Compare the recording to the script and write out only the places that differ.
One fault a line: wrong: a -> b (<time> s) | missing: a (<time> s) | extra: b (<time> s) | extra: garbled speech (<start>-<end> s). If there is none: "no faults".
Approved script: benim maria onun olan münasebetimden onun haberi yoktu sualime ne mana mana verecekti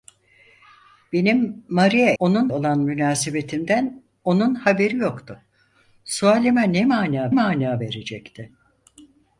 no faults